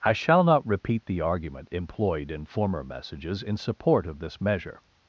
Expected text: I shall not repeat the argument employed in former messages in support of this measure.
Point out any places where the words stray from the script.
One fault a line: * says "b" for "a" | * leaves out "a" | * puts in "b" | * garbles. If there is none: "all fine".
all fine